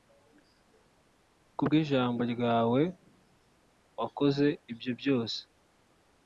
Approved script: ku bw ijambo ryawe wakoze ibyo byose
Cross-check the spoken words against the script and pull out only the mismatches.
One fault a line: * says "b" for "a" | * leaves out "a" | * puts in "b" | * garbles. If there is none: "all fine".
all fine